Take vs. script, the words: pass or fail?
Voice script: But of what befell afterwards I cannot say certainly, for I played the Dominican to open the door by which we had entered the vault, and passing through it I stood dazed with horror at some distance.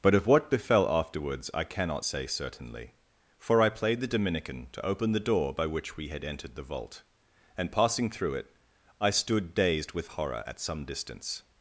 pass